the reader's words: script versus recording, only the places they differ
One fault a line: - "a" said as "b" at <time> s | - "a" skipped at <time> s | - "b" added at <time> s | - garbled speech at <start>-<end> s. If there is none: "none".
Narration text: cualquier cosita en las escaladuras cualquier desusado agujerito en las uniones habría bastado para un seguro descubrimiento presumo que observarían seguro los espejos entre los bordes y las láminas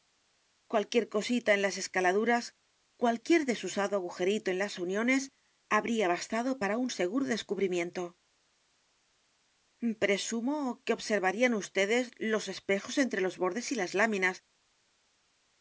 - "seguro" said as "vds" at 11.6 s